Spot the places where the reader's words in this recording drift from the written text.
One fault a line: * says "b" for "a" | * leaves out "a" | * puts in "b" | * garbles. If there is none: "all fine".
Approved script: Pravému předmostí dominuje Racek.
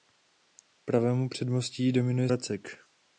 all fine